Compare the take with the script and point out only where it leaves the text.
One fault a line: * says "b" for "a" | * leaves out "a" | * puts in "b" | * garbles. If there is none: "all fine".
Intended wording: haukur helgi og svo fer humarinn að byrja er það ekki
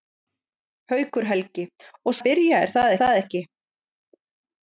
* leaves out "svo fer humarinn"
* puts in "það"